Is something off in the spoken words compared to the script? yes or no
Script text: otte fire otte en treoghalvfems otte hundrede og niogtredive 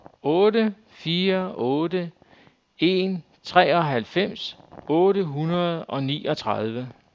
no